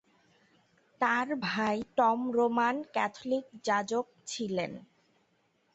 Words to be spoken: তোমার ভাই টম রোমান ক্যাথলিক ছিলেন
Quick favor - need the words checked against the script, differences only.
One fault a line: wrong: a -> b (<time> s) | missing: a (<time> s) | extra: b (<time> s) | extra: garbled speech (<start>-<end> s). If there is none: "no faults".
wrong: তোমার -> তার (1.0 s)
extra: যাজক (3.7 s)